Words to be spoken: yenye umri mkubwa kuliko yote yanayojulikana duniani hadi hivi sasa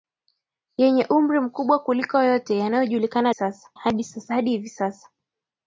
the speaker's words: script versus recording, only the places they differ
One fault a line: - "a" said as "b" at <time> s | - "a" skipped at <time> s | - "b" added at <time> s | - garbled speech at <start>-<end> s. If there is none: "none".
- "duniani" said as "sasa" at 3.3 s